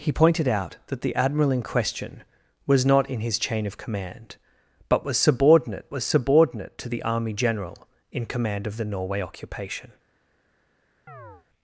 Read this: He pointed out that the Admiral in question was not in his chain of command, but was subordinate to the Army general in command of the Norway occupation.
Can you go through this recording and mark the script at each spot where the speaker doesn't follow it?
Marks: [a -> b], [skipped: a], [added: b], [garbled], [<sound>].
He pointed out that the Admiral in question was not in his chain of command, but was subordinate [added: was subordinate] to the Army general in command of the Norway occupation. [chirp]